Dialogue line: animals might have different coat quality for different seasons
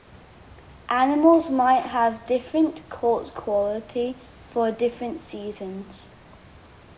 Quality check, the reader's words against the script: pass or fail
pass